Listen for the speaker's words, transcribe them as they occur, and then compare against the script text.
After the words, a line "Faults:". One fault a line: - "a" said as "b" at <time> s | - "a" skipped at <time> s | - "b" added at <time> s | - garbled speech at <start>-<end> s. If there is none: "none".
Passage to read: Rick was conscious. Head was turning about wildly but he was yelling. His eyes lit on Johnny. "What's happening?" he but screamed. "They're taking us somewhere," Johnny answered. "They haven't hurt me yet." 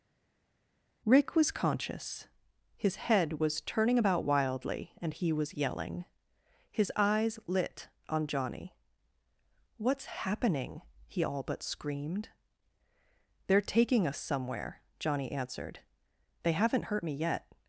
Rick was conscious. His head was turning about wildly and he was yelling. His eyes lit on Johnny. "What's happening?" he all but screamed. "They're taking us somewhere," Johnny answered. "They haven't hurt me yet."
Faults:
- "His" added at 2.8 s
- "but" said as "and" at 5.0 s
- "all" added at 11.2 s